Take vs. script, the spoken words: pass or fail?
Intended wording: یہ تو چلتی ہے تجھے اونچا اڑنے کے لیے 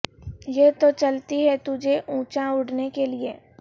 pass